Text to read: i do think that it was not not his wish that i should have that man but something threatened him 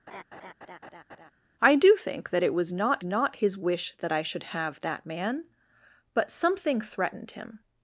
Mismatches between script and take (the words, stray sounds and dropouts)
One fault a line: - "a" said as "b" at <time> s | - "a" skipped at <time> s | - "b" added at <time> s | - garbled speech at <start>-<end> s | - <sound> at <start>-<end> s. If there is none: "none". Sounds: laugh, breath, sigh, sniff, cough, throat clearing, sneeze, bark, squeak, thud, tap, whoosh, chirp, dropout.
- laugh at 0.1-1.3 s